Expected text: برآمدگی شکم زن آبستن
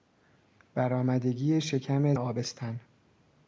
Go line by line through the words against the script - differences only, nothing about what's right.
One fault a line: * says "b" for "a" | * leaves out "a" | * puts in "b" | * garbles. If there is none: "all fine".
* leaves out "زن"